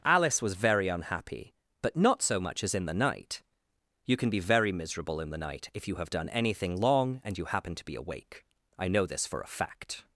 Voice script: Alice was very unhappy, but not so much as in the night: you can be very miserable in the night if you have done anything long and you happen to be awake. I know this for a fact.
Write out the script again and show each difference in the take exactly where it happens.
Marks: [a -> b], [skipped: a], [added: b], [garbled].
Alice was very unhappy, but not so much as in the night: you can be very miserable in the night if you have done anything long and you happen to be awake. I know this for a fact.